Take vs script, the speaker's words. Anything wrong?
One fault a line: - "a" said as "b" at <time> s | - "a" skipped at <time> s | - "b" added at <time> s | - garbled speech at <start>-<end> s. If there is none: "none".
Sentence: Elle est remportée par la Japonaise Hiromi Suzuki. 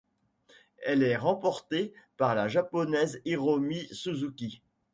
none